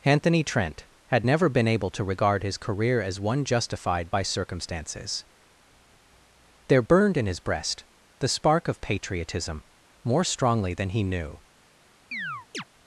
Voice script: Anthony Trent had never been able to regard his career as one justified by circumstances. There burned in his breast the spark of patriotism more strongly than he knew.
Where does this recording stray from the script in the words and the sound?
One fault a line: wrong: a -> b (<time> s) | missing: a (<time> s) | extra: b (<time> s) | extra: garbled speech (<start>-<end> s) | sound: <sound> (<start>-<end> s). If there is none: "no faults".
sound: chirp (12.1-12.6 s)